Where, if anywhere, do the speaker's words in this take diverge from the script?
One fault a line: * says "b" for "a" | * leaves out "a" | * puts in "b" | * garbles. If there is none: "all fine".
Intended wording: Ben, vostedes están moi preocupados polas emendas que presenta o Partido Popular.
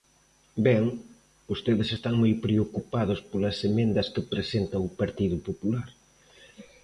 all fine